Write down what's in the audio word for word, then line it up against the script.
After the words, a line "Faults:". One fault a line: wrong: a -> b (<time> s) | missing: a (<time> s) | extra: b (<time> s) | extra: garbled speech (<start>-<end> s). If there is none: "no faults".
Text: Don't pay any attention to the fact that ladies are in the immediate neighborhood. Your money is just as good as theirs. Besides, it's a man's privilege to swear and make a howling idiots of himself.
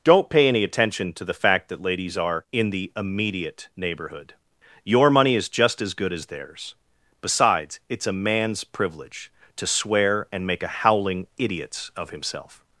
Don't pay any attention to the fact that ladies are in the immediate neighborhood. Your money is just as good as theirs. Besides, it's a man's privilege to swear and make a howling idiots of himself.
Faults:
no faults